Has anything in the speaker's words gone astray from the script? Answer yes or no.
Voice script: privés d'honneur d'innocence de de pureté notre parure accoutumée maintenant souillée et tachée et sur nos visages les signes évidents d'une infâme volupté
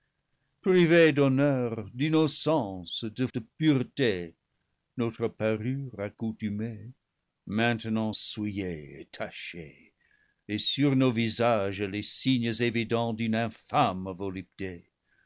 no